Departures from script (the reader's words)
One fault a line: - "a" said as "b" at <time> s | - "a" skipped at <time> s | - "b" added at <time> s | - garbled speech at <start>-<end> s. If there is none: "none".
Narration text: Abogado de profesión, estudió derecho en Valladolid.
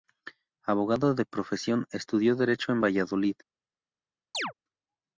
none